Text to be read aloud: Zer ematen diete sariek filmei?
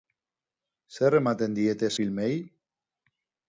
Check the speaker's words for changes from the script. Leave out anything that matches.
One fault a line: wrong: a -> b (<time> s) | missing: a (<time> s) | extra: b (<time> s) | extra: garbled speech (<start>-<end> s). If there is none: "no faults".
missing: sariek (1.9 s)